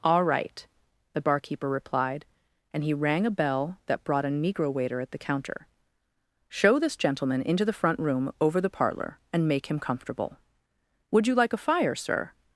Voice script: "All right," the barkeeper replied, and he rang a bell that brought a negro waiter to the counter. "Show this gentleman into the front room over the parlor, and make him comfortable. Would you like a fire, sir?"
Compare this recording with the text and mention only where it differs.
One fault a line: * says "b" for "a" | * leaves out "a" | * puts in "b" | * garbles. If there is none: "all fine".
* says "at" for "to"